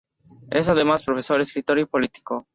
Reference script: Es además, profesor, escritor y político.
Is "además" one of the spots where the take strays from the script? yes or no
no